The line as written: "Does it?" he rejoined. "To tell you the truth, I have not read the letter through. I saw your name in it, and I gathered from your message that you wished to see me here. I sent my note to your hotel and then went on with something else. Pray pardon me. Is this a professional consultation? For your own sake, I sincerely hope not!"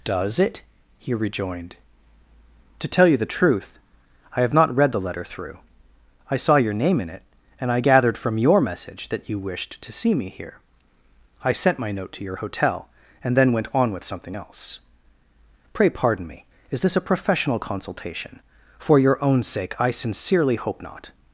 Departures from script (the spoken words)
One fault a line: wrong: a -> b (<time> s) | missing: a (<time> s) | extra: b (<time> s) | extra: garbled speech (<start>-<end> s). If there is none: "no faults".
no faults